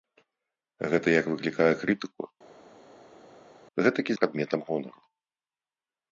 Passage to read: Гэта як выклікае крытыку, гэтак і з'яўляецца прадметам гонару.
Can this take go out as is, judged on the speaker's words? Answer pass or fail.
fail